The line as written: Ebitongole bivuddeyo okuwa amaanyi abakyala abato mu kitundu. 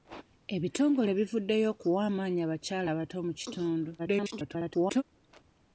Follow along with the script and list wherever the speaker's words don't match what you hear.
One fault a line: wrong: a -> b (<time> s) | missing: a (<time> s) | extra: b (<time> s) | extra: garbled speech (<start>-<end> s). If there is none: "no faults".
extra: garbled speech (4.0-5.0 s)